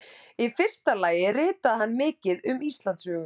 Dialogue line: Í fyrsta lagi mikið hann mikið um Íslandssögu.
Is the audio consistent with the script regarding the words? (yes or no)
no